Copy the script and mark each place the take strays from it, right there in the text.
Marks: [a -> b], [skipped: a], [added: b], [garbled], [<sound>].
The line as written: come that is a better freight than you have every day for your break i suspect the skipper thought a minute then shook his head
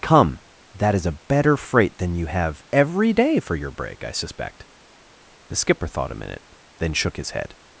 come that is a better freight than you have every day for your break i suspect the skipper thought a minute then shook his head